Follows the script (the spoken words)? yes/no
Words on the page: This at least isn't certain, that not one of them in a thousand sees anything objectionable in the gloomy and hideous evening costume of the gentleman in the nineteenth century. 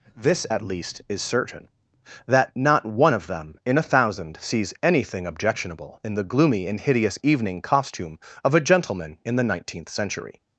no